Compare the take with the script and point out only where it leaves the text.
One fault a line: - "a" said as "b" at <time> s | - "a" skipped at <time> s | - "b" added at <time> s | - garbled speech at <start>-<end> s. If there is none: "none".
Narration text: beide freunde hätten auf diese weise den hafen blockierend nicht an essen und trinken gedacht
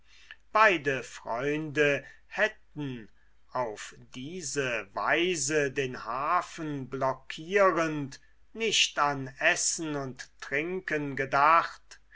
none